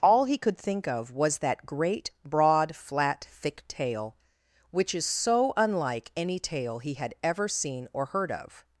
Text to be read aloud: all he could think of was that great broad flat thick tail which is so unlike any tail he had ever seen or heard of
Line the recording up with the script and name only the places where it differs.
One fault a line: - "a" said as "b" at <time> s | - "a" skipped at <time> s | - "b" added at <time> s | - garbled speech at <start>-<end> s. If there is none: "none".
none